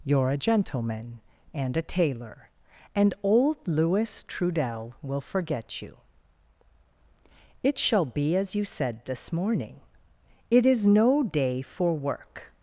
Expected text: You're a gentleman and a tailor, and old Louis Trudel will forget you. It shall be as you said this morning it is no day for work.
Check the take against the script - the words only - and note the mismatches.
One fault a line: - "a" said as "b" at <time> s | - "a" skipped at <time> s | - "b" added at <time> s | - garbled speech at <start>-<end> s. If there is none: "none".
none